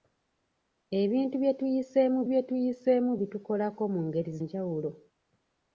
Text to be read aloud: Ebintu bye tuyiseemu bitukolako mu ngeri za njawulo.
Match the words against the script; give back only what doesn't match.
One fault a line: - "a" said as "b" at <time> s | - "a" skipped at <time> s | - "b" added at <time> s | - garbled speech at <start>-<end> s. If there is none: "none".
- "bye tuyiseemu" added at 2.3 s
- "za" skipped at 4.3 s